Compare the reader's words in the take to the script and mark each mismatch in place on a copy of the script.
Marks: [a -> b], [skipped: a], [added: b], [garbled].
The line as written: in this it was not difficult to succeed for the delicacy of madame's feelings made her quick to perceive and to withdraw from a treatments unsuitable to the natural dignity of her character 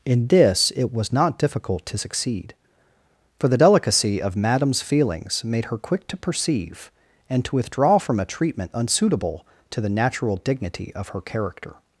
in this it was not difficult to succeed for the delicacy of madame's feelings made her quick to perceive and to withdraw from a [treatments -> treatment] unsuitable to the natural dignity of her character